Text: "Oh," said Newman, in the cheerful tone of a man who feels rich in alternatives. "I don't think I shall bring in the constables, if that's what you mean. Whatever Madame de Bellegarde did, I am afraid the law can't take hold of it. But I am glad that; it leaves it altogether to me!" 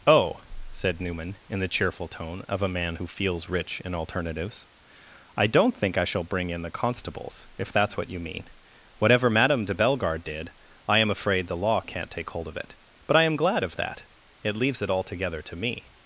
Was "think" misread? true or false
false